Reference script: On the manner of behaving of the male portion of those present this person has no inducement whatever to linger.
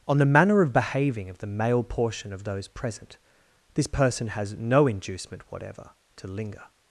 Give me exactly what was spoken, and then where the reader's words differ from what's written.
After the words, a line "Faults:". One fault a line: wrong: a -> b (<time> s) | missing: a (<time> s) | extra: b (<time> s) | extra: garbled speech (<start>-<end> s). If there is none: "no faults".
On the manner of behaving of the male portion of those present this person has no inducement whatever to linger.
Faults:
no faults